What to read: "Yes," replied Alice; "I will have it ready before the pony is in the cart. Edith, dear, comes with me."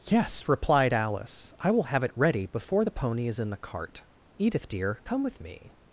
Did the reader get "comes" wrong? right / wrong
wrong